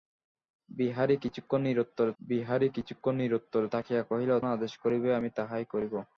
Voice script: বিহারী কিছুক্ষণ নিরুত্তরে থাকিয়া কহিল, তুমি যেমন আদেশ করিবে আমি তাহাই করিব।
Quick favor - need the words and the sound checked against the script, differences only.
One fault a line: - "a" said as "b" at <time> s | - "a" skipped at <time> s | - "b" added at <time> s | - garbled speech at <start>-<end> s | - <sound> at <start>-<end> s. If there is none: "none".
- "বিহারী কিছুক্ষণ নিরুত্তরে" added at 2.2 s
- "তুমি যেমন" skipped at 4.3 s